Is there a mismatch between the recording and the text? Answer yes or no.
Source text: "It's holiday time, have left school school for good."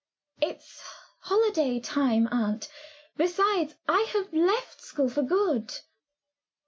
yes